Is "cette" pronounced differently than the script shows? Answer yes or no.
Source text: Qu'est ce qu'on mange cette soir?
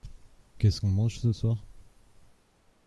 yes